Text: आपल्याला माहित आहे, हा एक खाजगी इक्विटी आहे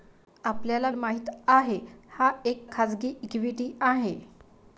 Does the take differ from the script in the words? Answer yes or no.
no